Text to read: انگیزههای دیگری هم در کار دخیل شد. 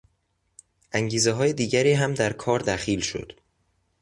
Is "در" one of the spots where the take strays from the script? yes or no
no